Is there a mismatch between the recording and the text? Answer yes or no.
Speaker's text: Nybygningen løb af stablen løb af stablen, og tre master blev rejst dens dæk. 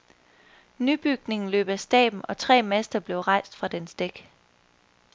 yes